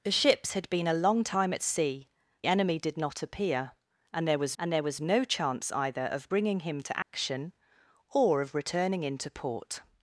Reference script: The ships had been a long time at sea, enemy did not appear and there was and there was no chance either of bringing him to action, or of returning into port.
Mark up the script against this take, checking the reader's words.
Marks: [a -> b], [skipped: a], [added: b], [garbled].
The ships had been a long time at sea, enemy did not appear and there was and there was no chance either of bringing him to action, or of returning into port.